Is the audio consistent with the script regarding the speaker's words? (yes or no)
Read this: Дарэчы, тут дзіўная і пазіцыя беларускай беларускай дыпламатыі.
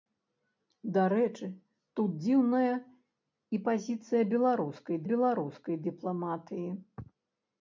yes